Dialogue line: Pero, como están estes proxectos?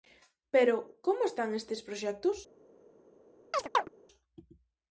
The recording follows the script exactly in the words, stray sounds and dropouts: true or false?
false